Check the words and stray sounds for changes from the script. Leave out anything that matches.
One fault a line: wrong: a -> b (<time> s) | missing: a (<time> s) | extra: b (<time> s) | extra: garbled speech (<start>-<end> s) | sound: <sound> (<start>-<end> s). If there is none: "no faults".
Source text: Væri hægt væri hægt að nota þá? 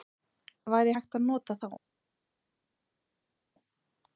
missing: væri hægt (1.2 s)